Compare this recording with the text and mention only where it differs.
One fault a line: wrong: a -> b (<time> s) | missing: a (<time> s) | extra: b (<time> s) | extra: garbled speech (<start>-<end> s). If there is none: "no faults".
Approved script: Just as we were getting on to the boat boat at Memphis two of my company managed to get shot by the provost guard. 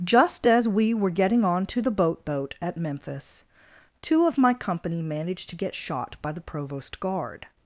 no faults